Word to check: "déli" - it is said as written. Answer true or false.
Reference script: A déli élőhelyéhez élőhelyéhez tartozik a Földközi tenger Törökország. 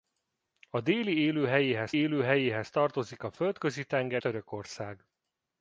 true